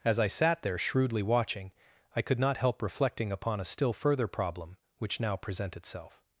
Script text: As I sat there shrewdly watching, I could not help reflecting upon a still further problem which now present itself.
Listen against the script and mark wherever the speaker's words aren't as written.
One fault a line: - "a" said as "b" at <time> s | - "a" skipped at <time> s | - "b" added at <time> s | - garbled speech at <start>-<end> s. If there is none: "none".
none